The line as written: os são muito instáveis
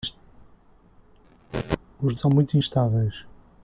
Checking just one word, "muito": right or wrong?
right